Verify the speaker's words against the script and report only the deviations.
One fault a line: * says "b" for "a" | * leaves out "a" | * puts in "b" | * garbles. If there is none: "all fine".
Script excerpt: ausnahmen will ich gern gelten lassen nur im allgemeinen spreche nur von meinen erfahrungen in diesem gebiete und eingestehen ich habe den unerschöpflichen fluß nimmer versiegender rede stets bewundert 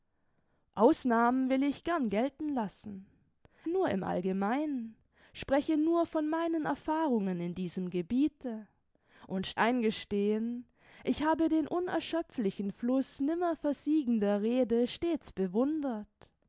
all fine